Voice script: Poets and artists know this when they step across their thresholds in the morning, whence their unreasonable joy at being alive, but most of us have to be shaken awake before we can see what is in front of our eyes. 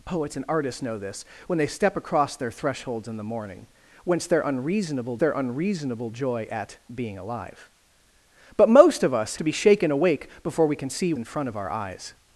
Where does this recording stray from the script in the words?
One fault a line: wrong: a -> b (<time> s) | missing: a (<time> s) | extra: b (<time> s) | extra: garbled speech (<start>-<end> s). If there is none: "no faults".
extra: their unreasonable (5.2 s)
missing: have (9.4 s)
missing: what is (11.1 s)